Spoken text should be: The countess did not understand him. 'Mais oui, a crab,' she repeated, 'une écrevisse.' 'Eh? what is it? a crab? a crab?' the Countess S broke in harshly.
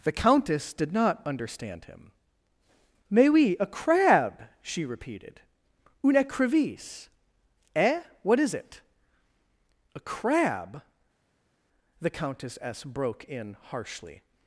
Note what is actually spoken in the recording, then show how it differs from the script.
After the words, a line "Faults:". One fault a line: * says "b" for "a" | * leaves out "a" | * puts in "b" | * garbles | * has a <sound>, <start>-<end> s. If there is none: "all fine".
The countess did not understand him. 'Mais oui, a crab,' she repeated, 'une écrevisse.' 'Eh? what is it? a crab?' the Countess S broke in harshly.
Faults:
* leaves out "a crab"